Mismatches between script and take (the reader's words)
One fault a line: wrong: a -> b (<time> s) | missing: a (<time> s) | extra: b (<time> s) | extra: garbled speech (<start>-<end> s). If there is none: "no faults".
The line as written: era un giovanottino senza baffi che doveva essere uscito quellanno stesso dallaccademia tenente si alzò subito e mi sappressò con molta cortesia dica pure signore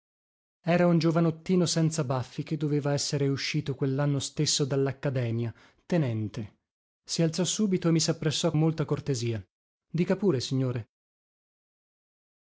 missing: con (8.5 s)